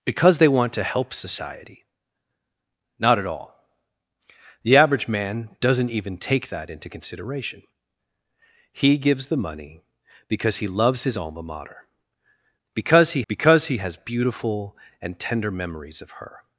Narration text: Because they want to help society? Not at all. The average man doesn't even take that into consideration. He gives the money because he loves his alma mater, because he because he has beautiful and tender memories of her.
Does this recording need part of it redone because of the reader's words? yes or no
no